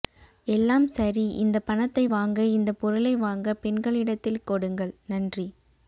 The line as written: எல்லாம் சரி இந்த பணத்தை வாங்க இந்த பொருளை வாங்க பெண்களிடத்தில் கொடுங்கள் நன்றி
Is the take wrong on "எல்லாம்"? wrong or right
right